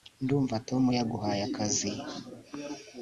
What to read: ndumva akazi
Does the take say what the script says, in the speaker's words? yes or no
no